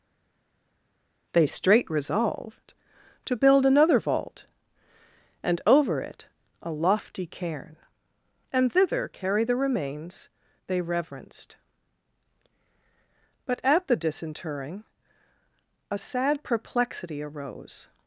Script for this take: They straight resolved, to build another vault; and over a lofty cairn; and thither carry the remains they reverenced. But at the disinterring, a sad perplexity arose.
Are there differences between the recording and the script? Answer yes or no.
yes